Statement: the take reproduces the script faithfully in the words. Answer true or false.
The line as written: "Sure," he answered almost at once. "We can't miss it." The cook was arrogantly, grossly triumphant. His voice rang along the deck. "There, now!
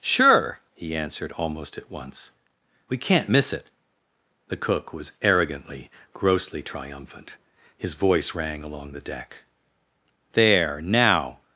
true